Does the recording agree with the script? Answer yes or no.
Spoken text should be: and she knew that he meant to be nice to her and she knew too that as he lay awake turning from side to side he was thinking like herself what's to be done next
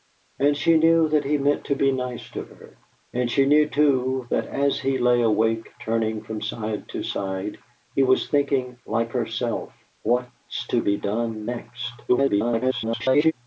no